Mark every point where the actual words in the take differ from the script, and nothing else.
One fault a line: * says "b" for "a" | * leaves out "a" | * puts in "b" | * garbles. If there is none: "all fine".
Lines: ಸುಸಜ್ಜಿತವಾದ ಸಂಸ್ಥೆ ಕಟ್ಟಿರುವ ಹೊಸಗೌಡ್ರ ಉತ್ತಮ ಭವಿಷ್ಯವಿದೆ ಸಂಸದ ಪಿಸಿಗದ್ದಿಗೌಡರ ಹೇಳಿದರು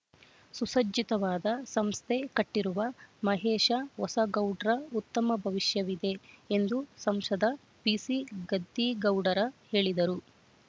* puts in "ಮಹೇಶ"
* puts in "ಎಂದು"